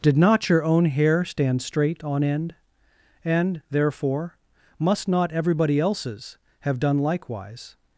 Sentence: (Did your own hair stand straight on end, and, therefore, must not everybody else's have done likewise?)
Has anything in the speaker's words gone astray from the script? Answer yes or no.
yes